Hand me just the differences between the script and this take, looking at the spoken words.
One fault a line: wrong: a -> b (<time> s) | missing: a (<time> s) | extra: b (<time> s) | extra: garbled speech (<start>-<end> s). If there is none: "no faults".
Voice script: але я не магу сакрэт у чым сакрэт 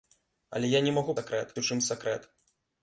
no faults